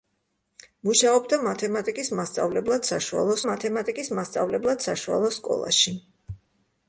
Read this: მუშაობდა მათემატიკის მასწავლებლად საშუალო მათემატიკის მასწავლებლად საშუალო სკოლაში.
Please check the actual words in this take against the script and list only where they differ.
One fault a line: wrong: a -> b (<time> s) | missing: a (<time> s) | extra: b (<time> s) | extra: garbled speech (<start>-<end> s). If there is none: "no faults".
no faults